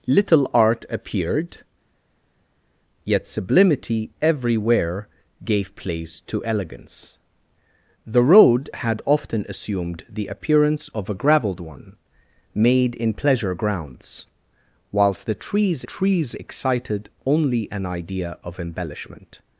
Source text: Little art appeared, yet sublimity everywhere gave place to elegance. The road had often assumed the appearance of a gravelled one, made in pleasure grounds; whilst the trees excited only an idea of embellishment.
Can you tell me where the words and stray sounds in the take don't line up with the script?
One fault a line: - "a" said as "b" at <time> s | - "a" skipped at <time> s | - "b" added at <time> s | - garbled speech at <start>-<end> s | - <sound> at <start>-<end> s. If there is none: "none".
- "trees" added at 15.8 s